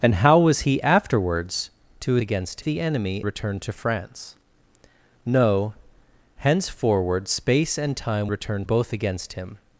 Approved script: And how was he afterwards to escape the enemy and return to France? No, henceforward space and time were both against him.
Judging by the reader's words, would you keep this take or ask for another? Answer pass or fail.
fail